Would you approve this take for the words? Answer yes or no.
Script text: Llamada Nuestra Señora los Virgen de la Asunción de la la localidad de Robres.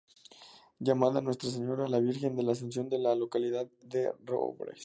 no